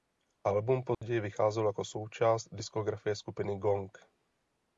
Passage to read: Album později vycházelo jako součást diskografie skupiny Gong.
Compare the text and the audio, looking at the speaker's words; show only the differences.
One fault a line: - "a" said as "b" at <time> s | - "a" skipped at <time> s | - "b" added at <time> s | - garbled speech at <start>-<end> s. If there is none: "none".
none